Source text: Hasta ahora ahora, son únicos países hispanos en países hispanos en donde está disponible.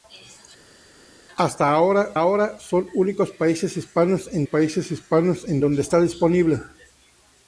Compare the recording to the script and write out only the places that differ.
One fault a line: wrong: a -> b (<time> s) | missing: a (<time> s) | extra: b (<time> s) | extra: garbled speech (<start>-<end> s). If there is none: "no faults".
no faults